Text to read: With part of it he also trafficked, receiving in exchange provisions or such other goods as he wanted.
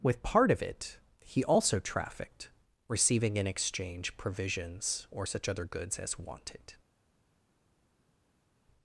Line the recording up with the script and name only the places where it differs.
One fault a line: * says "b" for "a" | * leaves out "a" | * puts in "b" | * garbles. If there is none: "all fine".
* leaves out "he"